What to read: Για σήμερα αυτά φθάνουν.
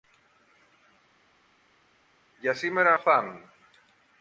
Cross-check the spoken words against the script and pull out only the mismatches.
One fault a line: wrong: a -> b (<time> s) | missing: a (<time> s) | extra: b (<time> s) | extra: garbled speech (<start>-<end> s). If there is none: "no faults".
missing: αυτά (2.9 s)